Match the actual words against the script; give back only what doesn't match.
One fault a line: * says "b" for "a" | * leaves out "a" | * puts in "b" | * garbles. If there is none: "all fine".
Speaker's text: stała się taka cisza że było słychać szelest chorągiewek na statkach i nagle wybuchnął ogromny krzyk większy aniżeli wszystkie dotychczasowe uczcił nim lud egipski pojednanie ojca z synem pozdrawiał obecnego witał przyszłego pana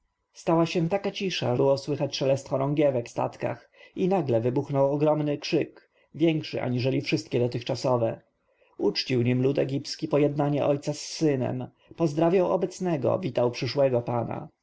* leaves out "że"
* leaves out "na"